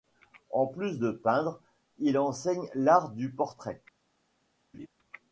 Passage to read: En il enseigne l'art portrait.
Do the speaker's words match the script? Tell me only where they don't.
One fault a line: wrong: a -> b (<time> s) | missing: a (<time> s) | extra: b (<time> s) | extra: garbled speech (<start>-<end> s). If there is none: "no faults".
extra: plus de peindre (0.7 s)
extra: du (3.1 s)